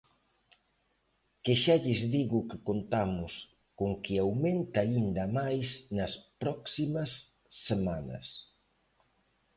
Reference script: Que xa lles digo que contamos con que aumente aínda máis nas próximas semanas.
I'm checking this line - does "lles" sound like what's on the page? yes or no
yes